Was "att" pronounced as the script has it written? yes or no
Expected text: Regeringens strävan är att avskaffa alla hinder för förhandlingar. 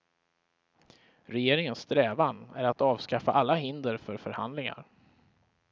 yes